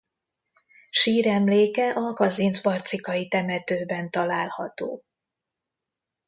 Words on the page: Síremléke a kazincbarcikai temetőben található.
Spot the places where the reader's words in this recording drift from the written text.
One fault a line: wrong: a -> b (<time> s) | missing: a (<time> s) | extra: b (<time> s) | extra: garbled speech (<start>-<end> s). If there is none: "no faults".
no faults